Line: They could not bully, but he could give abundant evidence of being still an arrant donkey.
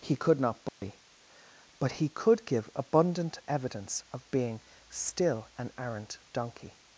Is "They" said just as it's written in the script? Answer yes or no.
no